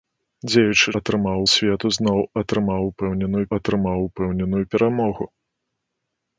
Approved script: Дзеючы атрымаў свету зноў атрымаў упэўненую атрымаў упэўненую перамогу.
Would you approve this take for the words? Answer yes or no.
yes